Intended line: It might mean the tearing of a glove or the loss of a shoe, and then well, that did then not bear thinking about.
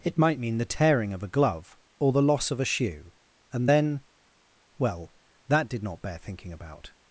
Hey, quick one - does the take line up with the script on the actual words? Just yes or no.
no